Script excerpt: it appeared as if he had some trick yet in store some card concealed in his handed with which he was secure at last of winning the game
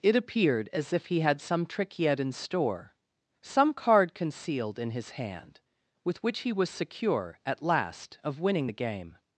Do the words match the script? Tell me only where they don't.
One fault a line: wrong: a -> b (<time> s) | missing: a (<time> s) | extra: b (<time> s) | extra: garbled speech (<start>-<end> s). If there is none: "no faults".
wrong: handed -> hand (5.1 s)